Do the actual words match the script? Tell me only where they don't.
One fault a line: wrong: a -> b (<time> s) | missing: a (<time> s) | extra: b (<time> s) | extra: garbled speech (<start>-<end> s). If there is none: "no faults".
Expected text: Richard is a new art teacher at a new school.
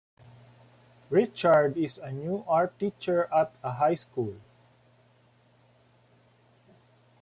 wrong: new -> high (3.7 s)